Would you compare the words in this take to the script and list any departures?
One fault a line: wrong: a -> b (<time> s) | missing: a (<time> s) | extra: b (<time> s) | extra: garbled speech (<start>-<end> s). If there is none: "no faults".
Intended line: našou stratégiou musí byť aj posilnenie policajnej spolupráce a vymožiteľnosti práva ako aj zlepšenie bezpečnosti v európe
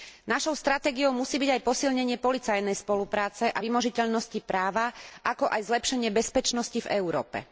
no faults